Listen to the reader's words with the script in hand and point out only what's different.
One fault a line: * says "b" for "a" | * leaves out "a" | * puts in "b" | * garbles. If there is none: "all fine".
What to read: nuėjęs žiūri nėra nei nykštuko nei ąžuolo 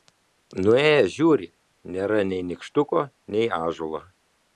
all fine